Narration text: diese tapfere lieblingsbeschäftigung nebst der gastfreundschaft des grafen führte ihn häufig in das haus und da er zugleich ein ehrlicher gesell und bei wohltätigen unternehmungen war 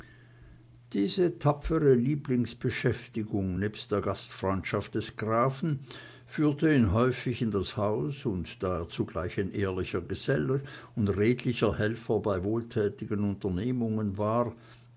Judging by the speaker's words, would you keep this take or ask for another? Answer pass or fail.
fail